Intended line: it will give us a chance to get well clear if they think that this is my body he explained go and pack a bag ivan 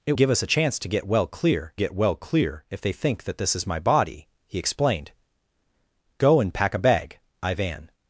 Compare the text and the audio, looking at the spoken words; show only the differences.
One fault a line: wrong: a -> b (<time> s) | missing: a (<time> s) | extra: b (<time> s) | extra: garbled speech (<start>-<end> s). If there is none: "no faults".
missing: will (0.1 s)
extra: get well clear (1.7 s)